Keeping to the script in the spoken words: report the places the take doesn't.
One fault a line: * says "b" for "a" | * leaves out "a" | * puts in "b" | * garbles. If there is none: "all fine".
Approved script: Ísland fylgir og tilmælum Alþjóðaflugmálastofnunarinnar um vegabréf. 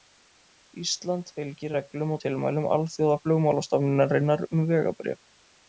* puts in "reglum"